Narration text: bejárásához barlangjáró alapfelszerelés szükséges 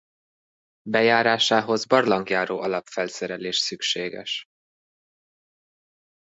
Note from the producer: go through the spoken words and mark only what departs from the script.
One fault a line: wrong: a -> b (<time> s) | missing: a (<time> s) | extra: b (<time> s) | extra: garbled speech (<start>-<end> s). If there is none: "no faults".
no faults